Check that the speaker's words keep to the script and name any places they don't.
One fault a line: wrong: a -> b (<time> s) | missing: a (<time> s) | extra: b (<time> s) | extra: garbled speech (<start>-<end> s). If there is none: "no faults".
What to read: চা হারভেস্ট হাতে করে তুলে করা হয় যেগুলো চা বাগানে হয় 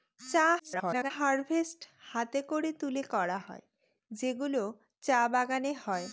extra: garbled speech (0.6-1.1 s)